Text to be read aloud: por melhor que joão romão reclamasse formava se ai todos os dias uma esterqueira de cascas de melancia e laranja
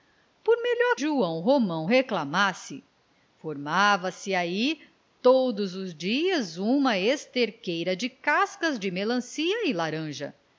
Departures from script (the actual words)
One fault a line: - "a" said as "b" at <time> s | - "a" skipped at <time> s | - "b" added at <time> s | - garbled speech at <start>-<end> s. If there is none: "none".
- "que" skipped at 0.9 s